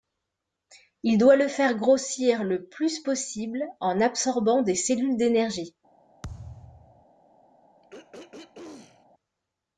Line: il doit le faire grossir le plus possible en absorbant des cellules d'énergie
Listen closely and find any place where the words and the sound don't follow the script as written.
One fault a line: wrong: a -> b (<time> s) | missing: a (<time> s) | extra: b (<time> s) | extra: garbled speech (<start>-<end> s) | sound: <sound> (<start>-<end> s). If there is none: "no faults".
sound: thud (6.2-7.1 s)
sound: throat clearing (7.8-9.1 s)